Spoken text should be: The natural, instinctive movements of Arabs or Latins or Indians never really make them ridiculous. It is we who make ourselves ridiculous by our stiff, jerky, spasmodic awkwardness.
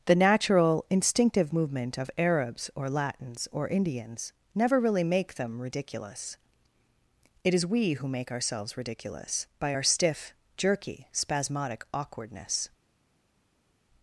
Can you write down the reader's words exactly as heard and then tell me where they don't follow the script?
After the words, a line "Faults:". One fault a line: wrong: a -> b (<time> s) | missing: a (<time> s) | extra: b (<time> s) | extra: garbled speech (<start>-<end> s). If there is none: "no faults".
The natural, instinctive movement of Arabs or Latins or Indians never really make them ridiculous. It is we who make ourselves ridiculous by our stiff, jerky, spasmodic awkwardness.
Faults:
wrong: movements -> movement (1.5 s)